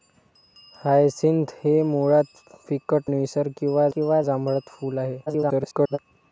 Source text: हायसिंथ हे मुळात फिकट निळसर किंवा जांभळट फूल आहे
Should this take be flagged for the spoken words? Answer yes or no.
yes